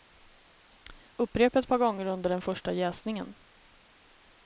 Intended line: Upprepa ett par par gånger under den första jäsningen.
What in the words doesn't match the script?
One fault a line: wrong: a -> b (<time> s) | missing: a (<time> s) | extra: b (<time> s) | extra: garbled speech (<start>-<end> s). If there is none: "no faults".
missing: par (1.8 s)